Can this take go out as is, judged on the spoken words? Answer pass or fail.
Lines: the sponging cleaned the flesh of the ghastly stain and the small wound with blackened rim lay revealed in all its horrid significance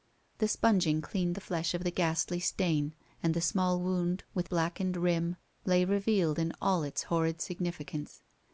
pass